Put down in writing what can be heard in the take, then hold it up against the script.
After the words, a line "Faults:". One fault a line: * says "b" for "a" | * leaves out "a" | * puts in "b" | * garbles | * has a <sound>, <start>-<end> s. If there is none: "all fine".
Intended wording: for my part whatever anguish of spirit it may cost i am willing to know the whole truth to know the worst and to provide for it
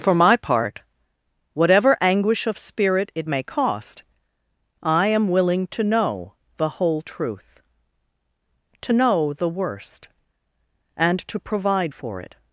for my part whatever anguish of spirit it may cost i am willing to know the whole truth to know the worst and to provide for it
Faults:
all fine